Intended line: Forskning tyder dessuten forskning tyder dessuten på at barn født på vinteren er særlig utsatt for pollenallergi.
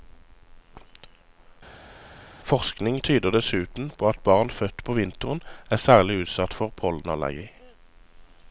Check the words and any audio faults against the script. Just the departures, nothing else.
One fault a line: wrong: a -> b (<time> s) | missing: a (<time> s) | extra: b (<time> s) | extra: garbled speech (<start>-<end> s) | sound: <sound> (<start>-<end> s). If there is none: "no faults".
missing: forskning tyder dessuten (3.9 s)